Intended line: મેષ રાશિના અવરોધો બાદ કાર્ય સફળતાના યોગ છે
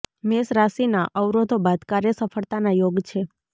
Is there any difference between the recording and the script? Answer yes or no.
no